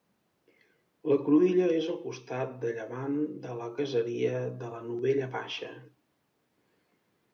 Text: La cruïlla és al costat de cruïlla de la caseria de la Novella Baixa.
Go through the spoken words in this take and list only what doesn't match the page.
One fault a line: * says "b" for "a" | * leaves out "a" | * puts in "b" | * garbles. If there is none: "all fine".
* says "llevant" for "cruïlla"